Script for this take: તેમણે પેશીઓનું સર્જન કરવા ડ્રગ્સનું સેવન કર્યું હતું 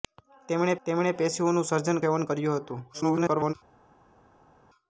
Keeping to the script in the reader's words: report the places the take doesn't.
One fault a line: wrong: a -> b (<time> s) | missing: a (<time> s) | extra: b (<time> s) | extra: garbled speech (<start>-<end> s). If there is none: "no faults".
extra: તેમણે (0.9 s)
missing: કરવા ડ્રગ્સનું (2.0 s)
extra: garbled speech (2.9-3.5 s)